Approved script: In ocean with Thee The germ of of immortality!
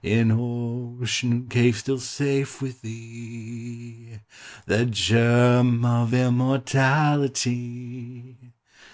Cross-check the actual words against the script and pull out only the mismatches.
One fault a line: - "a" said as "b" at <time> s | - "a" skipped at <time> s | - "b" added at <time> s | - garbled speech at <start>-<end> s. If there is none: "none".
- "cave still safe" added at 1.5 s
- "of" skipped at 6.2 s